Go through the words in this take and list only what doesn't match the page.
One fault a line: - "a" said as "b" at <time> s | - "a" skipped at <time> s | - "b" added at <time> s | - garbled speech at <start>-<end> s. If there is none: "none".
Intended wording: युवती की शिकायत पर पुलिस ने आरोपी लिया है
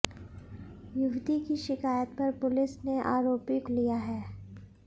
none